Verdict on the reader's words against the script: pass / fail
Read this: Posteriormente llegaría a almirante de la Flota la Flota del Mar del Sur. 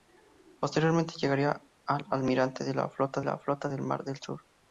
pass